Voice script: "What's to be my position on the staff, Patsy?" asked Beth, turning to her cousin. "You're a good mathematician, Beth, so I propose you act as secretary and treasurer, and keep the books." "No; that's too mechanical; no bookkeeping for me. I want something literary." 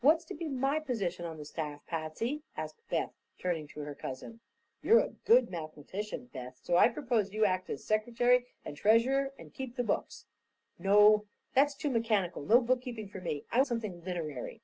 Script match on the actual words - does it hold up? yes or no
no